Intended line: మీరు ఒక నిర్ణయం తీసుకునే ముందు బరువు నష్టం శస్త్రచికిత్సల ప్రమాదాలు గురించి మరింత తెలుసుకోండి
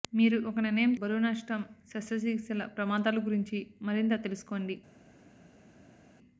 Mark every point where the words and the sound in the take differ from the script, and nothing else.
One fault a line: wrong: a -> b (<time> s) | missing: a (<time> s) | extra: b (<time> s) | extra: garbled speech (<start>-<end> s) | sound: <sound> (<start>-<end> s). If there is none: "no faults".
missing: తీసుకునే ముందు (0.9 s)